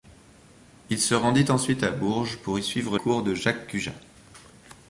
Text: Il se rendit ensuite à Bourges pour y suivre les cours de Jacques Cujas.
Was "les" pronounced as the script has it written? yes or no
no